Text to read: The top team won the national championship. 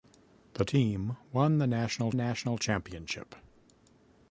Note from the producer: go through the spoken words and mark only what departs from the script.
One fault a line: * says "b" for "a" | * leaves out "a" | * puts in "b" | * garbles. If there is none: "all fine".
* leaves out "top"
* puts in "national"